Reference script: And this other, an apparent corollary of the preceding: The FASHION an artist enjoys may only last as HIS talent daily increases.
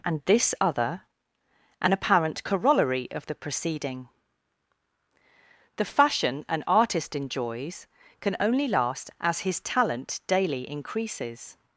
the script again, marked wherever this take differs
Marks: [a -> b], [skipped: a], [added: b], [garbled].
And this other, an apparent corollary of the preceding: The FASHION an artist enjoys [may -> can] only last as HIS talent daily increases.